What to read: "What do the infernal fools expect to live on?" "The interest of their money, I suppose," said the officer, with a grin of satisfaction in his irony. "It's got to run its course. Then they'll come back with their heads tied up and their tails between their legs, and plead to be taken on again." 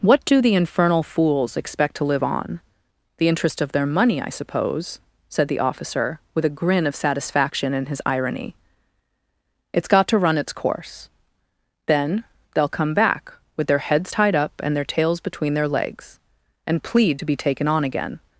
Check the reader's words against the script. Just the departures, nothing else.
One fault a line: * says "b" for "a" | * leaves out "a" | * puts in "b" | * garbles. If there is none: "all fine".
all fine